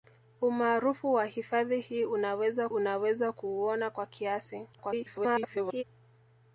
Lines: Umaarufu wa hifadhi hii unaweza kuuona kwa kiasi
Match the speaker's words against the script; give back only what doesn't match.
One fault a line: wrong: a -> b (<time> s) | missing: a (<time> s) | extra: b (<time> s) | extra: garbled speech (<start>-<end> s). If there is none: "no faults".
extra: unaweza (2.7 s)
extra: garbled speech (4.7-5.8 s)